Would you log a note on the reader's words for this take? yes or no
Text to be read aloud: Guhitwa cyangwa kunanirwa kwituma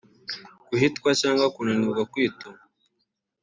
no